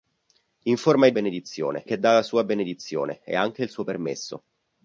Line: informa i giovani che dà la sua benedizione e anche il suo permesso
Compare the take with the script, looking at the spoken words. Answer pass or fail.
fail